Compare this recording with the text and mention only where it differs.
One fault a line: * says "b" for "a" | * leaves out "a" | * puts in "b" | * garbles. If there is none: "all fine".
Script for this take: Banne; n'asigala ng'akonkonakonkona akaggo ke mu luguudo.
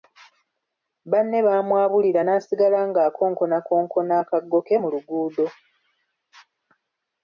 * puts in "baamwabulira"